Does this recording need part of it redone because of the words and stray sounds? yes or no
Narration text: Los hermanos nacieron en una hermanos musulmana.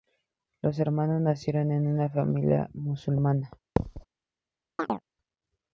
yes